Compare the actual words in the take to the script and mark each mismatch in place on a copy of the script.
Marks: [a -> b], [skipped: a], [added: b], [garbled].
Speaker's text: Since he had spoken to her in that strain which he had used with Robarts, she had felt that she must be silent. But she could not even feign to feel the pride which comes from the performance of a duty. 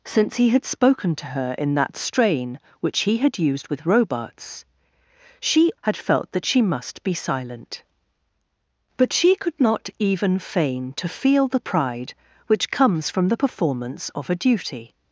Since he had spoken to her in that strain which he had used with Robarts, she had felt that she must be silent. But she could not even feign to feel the pride which comes from the performance of a duty.